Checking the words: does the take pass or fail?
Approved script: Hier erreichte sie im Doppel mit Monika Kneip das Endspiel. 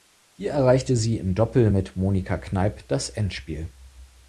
pass